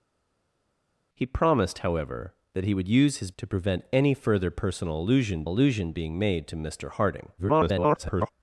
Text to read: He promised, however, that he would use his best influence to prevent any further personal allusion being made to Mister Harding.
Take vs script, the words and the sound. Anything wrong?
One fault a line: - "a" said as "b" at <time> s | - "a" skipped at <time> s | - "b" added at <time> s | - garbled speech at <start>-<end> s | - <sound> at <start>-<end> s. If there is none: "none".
- "best influence" skipped at 3.3 s
- "allusion" added at 5.5 s
- garbled speech at 7.4-8.3 s